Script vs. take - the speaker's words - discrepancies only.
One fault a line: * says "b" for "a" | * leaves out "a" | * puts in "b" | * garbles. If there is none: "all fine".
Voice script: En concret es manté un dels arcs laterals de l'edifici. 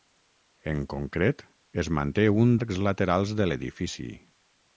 * leaves out "dels"